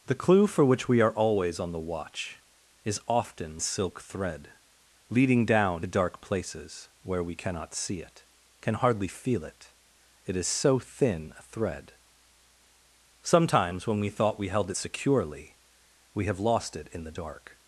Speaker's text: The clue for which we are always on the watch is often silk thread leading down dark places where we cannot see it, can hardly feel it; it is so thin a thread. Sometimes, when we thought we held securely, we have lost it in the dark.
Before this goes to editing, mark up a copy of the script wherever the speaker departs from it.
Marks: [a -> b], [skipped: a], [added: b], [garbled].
The clue for which we are always on the watch is often silk thread leading down dark places where we cannot see it, can hardly feel it; it is so thin a thread. Sometimes, when we thought we held securely, we have lost it in the dark.